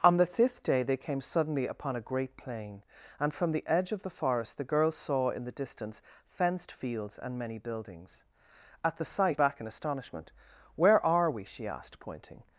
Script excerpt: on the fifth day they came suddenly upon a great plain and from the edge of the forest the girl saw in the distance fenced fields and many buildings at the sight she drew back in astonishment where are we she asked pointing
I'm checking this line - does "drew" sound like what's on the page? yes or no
no